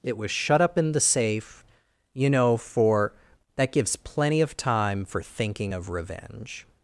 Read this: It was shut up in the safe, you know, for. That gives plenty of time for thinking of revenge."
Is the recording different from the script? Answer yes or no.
no